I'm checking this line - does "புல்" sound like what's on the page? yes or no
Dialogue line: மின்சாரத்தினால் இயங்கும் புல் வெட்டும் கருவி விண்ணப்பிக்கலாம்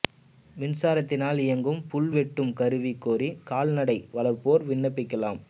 yes